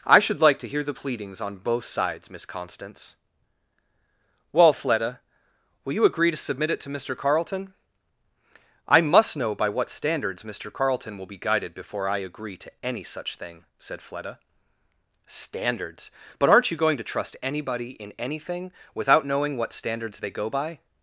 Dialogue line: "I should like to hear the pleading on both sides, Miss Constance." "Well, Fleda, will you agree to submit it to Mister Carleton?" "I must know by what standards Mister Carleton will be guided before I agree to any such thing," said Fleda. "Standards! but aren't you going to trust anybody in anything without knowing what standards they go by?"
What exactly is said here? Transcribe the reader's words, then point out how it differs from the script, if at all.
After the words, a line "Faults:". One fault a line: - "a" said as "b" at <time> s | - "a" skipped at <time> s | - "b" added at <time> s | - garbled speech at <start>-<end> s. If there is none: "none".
"I should like to hear the pleadings on both sides, Miss Constance." "Well, Fleda, will you agree to submit it to Mister Carleton?" "I must know by what standards Mister Carleton will be guided before I agree to any such thing," said Fleda. "Standards! but aren't you going to trust anybody in anything without knowing what standards they go by?"
Faults:
- "pleading" said as "pleadings" at 0.9 s